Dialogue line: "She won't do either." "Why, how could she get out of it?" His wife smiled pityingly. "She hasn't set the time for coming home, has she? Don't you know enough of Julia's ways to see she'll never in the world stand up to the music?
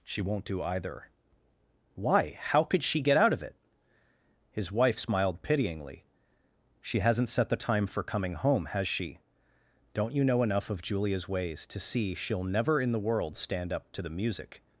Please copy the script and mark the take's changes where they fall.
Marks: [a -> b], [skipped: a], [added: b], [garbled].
"She won't do either." "Why, how could she get out of it?" His wife smiled pityingly. "She hasn't set the time for coming home, has she? Don't you know enough of Julia's ways to see she'll never in the world stand up to the music?